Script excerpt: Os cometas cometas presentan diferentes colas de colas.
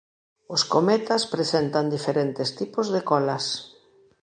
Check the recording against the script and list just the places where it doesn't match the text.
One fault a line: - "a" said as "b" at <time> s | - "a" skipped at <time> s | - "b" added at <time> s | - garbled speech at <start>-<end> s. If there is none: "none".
- "cometas" skipped at 1.2 s
- "colas" said as "tipos" at 2.6 s